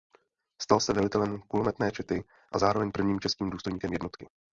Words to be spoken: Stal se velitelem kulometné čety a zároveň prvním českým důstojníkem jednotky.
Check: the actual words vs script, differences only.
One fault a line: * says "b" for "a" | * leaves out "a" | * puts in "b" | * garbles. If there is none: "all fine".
all fine